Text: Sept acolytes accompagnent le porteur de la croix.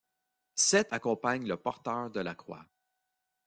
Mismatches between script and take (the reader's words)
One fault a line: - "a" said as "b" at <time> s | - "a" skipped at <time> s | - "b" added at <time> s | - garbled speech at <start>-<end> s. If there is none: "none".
- "acolytes" skipped at 0.9 s